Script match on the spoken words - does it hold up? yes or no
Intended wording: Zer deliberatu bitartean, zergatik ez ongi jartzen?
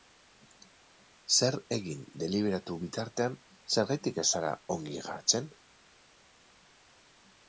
no